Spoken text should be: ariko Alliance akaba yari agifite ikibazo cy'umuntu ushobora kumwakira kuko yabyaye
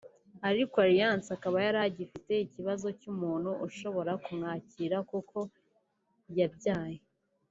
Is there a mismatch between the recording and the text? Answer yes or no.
no